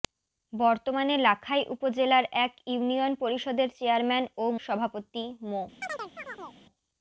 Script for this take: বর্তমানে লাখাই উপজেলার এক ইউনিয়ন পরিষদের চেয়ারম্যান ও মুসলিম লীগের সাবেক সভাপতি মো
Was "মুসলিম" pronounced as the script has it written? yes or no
no